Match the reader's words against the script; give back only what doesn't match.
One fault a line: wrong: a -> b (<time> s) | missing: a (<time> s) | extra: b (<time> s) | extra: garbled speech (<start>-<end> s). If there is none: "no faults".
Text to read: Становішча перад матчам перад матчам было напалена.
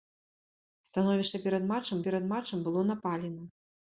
no faults